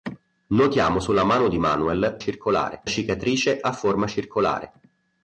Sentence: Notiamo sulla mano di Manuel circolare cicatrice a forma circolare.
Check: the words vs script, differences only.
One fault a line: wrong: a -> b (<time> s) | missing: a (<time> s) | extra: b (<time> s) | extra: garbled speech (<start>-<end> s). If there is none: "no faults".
no faults